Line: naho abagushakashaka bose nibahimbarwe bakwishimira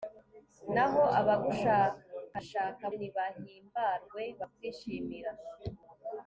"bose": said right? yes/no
no